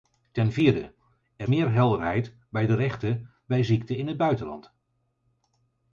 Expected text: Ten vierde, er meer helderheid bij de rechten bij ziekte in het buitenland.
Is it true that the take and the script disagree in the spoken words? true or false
false